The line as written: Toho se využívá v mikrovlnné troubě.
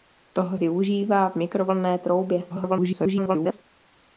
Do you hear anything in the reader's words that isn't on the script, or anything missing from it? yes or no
yes